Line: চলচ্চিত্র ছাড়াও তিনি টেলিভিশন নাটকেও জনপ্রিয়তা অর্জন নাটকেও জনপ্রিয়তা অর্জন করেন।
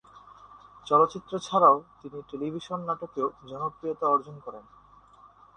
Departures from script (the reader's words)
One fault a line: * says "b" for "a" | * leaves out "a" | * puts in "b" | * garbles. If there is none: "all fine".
* leaves out "নাটকেও জনপ্রিয়তা অর্জন"